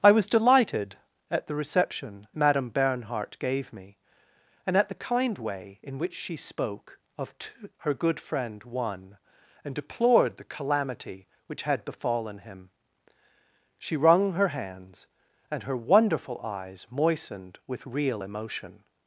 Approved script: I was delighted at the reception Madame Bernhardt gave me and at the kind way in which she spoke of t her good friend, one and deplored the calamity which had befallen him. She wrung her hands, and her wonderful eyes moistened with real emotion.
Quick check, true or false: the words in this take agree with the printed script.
true